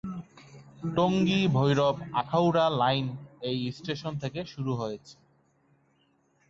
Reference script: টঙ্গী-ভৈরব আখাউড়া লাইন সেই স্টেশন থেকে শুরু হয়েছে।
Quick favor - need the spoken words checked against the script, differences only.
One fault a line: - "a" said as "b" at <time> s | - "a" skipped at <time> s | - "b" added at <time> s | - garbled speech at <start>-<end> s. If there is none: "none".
- "সেই" said as "এই" at 3.4 s